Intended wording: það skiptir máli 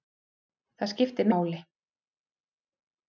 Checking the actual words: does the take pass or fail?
pass